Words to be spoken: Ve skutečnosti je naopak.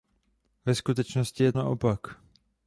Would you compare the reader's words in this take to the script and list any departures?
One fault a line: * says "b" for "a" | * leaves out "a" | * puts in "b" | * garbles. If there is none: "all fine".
all fine